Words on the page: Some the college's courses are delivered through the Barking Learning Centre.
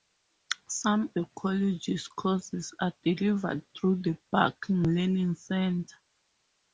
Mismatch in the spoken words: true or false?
false